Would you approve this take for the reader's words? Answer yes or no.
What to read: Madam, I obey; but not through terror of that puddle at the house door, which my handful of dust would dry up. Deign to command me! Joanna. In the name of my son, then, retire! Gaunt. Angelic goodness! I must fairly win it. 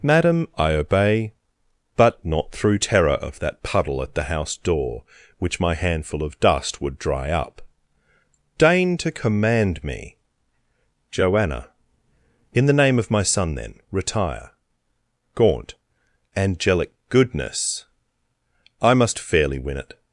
yes